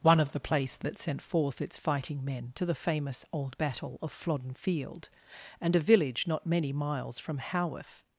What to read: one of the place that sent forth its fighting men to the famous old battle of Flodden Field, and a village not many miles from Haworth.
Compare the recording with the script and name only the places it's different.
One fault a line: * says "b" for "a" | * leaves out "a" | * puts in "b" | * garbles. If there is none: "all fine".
all fine